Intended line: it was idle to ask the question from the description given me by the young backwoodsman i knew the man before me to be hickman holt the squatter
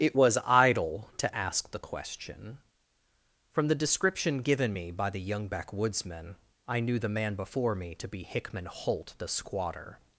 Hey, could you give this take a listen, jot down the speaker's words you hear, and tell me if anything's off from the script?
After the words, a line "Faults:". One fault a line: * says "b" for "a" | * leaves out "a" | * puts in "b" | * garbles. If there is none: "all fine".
it was idle to ask the question from the description given me by the young backwoodsman i knew the man before me to be hickman holt the squatter
Faults:
all fine